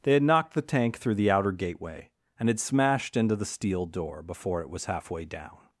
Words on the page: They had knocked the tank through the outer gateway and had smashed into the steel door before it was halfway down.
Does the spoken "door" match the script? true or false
true